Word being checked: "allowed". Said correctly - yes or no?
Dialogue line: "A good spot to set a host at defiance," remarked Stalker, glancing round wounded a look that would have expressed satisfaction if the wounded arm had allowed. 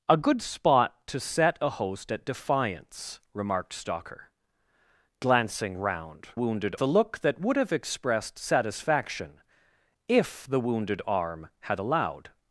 yes